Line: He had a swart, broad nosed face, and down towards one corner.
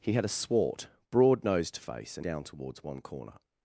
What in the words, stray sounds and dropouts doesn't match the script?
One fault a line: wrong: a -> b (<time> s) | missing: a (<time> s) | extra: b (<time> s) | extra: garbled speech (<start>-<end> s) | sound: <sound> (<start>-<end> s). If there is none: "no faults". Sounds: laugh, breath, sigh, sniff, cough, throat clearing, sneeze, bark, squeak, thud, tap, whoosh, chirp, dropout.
no faults